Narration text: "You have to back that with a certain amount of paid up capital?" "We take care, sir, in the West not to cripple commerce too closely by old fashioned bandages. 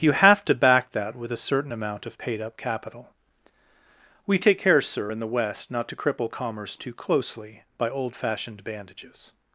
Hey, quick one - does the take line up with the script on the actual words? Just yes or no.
yes